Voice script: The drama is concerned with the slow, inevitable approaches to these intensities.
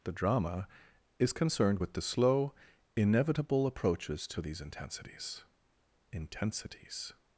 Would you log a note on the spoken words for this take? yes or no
yes